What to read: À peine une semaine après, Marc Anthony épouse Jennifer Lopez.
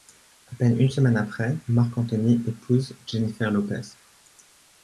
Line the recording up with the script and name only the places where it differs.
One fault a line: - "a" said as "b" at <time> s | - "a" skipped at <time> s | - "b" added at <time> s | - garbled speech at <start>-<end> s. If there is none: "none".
none